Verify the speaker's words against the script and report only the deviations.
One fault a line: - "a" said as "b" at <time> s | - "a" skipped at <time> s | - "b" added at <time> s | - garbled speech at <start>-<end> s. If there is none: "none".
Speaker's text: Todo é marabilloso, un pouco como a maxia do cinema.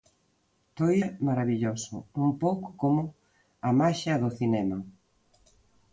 none